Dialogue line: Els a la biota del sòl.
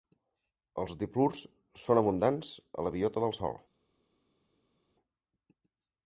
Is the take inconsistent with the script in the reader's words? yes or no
yes